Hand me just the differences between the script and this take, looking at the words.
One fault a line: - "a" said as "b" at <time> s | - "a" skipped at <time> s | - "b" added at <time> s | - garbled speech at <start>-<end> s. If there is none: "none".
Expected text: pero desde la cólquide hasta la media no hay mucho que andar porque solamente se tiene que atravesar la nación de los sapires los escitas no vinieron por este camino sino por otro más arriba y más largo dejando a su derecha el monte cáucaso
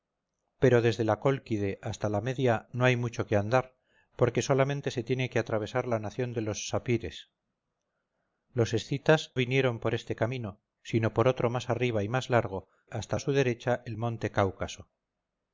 - "no" skipped at 9.3 s
- "dejando" said as "hasta" at 12.9 s